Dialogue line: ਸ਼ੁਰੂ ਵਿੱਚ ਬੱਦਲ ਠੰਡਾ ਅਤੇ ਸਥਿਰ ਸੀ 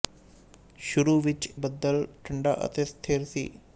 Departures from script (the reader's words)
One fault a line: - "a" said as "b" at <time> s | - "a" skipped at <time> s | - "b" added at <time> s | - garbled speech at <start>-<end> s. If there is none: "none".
none